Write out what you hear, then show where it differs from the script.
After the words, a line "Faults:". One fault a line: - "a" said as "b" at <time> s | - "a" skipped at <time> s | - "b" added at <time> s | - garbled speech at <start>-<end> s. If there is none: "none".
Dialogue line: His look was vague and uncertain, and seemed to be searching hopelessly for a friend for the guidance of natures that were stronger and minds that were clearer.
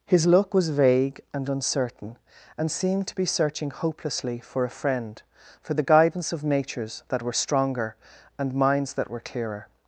His look was vague and uncertain, and seemed to be searching hopelessly for a friend for the guidance of natures that were stronger and minds that were clearer.
Faults:
none